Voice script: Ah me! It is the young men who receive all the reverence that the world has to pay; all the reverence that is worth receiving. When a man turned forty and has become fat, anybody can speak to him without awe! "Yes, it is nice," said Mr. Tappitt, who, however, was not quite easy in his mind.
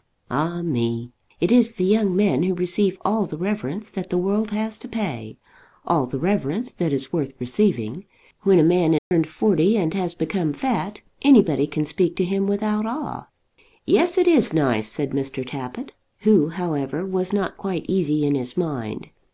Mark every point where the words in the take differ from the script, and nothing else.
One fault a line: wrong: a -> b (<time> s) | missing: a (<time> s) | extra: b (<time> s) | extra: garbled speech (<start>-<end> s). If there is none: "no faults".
no faults